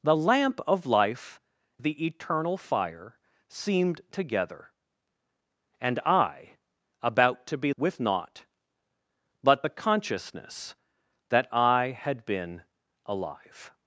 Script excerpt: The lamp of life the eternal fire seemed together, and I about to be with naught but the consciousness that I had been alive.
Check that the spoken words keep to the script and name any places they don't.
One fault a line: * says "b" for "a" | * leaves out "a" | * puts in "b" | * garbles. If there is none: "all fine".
all fine